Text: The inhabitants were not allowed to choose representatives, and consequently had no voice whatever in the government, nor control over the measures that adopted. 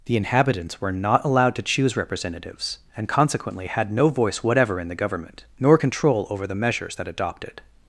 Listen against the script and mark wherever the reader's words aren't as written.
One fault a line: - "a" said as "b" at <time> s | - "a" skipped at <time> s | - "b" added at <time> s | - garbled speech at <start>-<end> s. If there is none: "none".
none